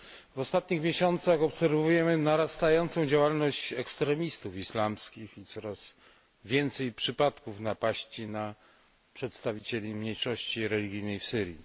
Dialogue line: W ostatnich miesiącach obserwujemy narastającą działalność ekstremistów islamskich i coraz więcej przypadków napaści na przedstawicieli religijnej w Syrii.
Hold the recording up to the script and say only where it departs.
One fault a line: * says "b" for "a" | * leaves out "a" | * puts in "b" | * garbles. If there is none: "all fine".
* puts in "mniejszości"